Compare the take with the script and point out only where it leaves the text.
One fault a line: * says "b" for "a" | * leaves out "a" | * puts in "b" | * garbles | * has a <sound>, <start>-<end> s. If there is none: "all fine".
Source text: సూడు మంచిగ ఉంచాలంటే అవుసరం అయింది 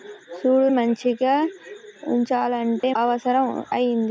* has a dropout, 2.8-2.8 s